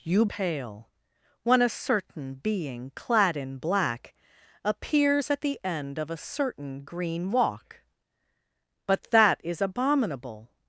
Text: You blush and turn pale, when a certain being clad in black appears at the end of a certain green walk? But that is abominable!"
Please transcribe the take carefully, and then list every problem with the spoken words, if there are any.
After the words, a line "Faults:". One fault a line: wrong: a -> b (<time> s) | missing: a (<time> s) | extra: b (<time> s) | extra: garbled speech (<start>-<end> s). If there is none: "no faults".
You pale, when a certain being clad in black appears at the end of a certain green walk? But that is abominable!"
Faults:
missing: blush and turn (0.2 s)